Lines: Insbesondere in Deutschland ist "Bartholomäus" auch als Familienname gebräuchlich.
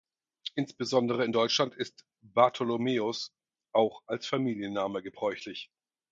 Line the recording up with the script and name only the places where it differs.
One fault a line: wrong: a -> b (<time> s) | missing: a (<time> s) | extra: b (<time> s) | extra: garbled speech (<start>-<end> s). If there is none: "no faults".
no faults